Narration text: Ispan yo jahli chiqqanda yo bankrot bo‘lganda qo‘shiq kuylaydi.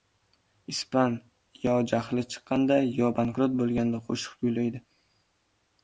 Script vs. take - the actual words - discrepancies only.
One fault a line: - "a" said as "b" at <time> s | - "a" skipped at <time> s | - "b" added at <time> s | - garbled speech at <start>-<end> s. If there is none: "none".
none